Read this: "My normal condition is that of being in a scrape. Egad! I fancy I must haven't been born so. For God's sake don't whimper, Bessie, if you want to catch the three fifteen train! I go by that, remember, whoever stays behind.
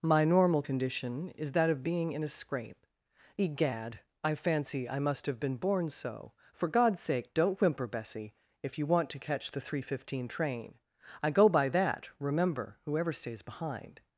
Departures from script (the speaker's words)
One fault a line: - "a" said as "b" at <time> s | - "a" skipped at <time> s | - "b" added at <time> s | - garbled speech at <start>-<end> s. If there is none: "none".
- "haven't" said as "have" at 5.3 s